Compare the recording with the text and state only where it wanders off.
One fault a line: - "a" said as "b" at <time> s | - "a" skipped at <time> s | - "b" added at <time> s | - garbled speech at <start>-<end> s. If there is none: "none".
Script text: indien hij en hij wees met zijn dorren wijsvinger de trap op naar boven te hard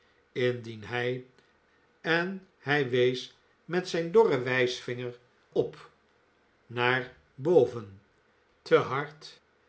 - "de trap" skipped at 5.2 s